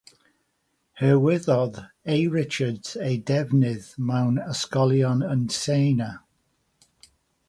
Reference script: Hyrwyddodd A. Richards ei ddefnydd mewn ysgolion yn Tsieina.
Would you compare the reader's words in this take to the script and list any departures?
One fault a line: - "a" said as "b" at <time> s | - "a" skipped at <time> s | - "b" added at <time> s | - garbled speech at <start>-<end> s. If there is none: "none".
none